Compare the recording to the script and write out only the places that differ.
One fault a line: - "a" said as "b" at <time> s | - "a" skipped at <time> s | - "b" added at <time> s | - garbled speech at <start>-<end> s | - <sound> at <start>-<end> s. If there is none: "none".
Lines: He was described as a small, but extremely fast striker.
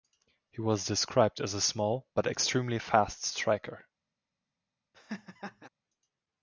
- laugh at 4.9-5.7 s